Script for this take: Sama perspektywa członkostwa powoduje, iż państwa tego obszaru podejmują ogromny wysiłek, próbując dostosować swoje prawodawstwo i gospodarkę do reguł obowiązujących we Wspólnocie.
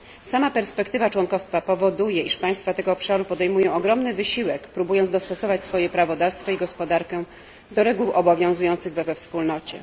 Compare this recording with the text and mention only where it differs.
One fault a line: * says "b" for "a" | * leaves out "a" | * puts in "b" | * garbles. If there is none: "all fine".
* puts in "we"